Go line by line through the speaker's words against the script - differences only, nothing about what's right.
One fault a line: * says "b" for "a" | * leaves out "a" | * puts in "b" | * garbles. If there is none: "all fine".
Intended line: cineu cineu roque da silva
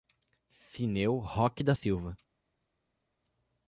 * leaves out "cineu"